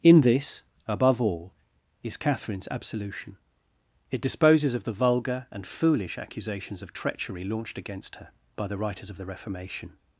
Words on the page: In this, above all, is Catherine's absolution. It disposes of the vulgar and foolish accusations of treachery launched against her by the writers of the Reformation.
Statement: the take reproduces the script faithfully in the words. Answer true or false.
true